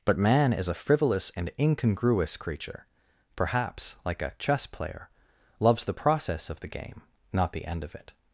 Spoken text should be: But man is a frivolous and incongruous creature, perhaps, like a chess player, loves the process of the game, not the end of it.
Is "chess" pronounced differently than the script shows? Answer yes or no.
no